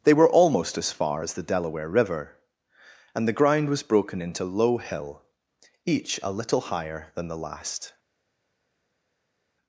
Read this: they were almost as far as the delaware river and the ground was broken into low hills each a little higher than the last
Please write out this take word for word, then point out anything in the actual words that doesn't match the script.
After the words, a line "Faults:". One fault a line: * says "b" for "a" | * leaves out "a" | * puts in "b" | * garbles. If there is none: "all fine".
they were almost as far as the delaware river and the ground was broken into low hill each a little higher than the last
Faults:
* says "hill" for "hills"